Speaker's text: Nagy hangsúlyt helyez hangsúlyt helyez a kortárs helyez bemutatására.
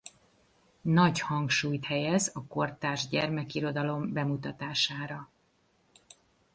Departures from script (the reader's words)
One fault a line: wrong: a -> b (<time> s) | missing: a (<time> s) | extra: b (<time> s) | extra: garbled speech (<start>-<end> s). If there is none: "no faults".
missing: hangsúlyt helyez (2.3 s)
wrong: helyez -> gyermekirodalom (3.1 s)